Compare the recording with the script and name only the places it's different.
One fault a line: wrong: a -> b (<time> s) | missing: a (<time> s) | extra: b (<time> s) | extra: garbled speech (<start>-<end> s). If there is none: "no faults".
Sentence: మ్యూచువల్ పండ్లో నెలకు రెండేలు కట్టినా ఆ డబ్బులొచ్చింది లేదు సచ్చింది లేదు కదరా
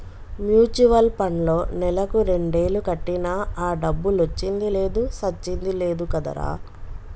no faults